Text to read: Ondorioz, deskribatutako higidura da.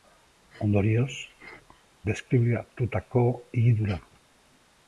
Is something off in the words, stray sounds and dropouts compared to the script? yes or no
no